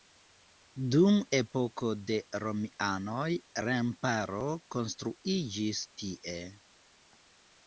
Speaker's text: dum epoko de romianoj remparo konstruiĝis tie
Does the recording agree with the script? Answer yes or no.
yes